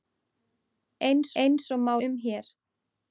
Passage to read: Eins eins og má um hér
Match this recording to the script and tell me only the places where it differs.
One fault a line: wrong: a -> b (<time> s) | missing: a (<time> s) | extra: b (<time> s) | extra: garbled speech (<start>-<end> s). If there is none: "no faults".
no faults